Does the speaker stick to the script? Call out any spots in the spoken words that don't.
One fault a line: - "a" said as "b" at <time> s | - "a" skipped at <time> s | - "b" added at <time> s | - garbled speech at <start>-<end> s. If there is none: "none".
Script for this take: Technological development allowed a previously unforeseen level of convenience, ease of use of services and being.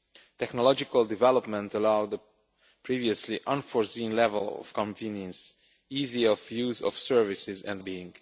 none